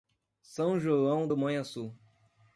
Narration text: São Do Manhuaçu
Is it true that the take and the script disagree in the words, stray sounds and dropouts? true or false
true